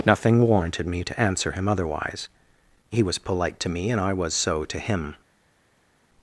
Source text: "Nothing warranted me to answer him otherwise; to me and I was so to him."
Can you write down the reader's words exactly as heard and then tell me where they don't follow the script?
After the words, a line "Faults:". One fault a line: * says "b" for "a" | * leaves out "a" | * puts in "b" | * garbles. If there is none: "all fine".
"Nothing warranted me to answer him otherwise; he was polite to me and I was so to him."
Faults:
* puts in "he was polite"